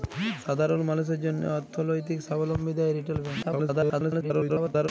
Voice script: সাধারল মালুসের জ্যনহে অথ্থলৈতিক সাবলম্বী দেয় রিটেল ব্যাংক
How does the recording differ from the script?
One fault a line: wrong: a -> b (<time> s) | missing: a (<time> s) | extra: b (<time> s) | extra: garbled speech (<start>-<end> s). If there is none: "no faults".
extra: garbled speech (3.4-4.9 s)